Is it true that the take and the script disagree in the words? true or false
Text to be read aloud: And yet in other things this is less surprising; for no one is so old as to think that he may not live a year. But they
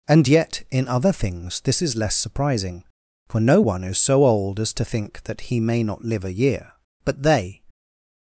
false